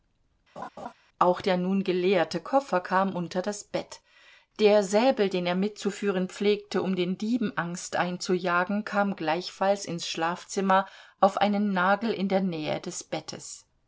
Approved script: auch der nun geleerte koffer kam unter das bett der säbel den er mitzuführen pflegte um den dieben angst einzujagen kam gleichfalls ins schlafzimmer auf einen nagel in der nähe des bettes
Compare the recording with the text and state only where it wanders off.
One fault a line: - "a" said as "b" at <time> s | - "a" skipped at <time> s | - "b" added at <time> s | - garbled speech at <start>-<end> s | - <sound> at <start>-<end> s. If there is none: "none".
- laugh at 0.6-0.9 s